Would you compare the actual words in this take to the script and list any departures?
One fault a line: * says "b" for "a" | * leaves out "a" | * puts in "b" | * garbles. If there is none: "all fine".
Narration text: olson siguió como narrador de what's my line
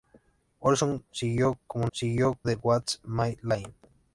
* says "siguió" for "narrador"